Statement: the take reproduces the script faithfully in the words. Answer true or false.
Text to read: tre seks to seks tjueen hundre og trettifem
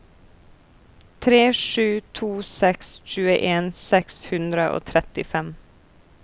false